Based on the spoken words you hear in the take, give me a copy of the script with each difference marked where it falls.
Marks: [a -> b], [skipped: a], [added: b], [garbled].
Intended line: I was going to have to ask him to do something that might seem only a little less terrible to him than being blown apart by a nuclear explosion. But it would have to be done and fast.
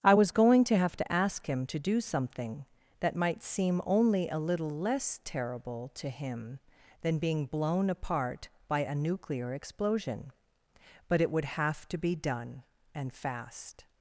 I was going to have to ask him to do something that might seem only a little less terrible to him than being blown apart by a nuclear explosion. But it would have to be done and fast.